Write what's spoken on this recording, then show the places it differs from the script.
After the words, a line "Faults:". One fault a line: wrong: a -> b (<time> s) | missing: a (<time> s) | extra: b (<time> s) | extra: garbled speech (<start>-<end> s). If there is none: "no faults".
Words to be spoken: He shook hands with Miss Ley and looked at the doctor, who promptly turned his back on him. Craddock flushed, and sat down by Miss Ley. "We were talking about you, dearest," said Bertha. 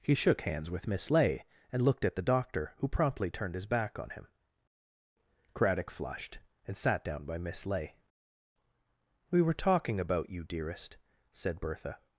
He shook hands with Miss Ley and looked at the doctor, who promptly turned his back on him. Craddock flushed, and sat down by Miss Ley. "We were talking about you, dearest," said Bertha.
Faults:
no faults